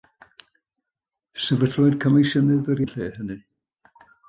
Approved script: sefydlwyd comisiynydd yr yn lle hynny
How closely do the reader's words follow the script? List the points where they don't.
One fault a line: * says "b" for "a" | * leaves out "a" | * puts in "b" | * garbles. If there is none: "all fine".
all fine